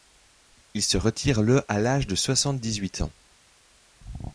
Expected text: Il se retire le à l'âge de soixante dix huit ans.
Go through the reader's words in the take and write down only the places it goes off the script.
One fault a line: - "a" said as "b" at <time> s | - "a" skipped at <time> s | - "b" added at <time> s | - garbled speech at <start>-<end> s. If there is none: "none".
none